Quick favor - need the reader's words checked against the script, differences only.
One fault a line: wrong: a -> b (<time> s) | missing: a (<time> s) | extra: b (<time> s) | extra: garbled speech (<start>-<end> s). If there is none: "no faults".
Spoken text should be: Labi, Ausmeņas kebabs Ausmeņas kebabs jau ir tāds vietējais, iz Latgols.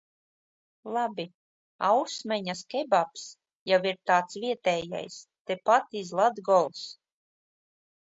missing: Ausmeņas kebabs (3.3 s)
extra: tepat (5.5 s)